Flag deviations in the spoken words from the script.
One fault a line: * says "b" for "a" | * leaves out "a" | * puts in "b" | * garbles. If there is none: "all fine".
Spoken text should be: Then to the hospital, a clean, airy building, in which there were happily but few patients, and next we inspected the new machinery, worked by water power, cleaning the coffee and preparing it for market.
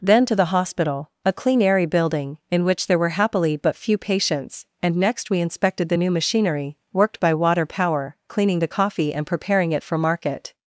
all fine